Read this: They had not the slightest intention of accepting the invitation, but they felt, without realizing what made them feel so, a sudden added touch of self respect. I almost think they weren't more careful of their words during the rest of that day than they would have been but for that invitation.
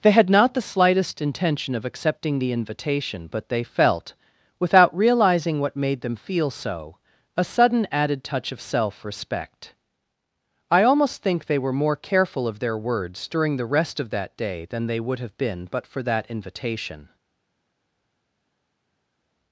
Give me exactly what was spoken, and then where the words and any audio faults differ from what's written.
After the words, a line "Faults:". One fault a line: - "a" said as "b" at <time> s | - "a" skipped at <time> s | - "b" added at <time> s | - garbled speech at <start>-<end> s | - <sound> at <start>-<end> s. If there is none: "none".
They had not the slightest intention of accepting the invitation, but they felt, without realizing what made them feel so, a sudden added touch of self respect. I almost think they were more careful of their words during the rest of that day than they would have been but for that invitation.
Faults:
- "weren't" said as "were" at 11.6 s